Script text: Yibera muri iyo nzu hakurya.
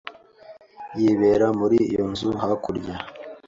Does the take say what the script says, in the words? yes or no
yes